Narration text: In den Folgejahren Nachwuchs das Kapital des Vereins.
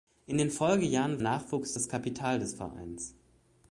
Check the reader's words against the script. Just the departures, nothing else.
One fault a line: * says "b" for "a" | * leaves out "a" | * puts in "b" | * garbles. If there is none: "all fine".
all fine